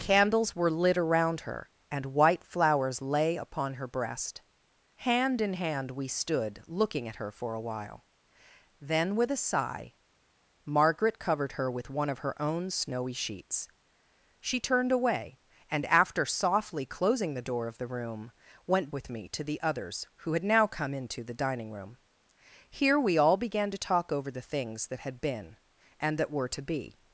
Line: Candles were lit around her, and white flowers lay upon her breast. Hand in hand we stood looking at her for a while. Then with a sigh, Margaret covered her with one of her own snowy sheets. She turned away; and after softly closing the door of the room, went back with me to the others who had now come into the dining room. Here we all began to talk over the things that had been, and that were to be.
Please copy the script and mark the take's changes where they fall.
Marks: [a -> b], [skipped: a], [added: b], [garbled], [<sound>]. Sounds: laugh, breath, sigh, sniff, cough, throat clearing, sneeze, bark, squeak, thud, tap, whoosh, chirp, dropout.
Candles were lit around her, and white flowers lay upon her breast. Hand in hand we stood looking at her for a while. Then with a sigh, Margaret covered her with one of her own snowy sheets. She turned away; and after softly closing the door of the room, went [skipped: back] with me to the others who had now come into the dining room. Here we all began to talk over the things that had been, and that were to be.